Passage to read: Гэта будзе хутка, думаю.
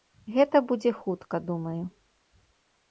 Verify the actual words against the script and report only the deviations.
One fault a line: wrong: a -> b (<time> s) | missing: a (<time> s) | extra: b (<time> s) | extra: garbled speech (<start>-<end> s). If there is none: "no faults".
no faults